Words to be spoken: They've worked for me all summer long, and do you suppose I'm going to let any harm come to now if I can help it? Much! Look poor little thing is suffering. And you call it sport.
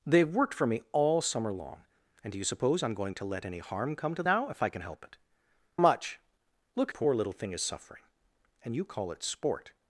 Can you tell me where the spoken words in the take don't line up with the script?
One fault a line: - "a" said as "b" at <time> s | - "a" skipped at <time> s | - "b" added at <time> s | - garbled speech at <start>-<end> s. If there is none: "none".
none